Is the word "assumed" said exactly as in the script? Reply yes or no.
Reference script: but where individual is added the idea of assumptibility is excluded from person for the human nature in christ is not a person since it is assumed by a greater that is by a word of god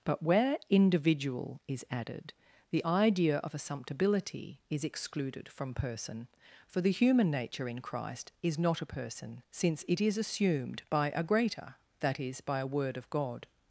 yes